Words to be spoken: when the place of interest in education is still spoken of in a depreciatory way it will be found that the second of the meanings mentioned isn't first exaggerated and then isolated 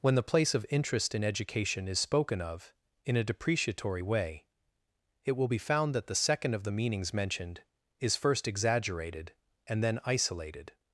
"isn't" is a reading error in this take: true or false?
true